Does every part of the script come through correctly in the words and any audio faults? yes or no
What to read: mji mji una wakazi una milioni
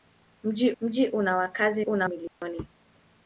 no